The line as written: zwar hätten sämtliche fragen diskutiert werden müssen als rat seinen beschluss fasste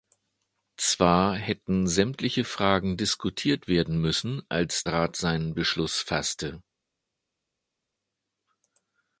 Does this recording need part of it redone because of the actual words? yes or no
no